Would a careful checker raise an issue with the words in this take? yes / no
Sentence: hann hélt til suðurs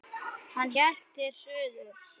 no